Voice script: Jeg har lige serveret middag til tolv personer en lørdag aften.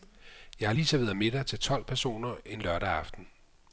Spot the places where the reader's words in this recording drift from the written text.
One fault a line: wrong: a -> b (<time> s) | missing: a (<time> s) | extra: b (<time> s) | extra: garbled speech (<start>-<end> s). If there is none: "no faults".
no faults